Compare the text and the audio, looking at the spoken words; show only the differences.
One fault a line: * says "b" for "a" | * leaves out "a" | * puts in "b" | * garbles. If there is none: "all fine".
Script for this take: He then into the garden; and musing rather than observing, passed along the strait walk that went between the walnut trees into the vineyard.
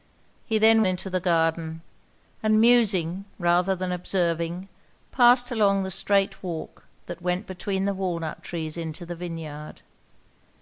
all fine